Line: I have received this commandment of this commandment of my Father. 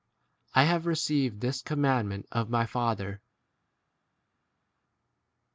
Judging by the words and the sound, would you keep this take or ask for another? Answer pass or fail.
fail